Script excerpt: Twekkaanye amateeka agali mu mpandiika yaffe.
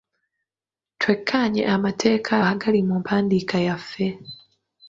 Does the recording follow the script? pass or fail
pass